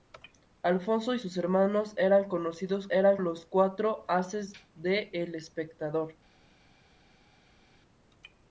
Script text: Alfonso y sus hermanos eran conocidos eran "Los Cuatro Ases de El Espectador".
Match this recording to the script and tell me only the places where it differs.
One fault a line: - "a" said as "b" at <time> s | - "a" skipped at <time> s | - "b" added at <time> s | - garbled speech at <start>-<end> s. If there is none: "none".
none